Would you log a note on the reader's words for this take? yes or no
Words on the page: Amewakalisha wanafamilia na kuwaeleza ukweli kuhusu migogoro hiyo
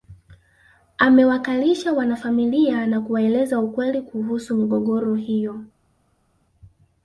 no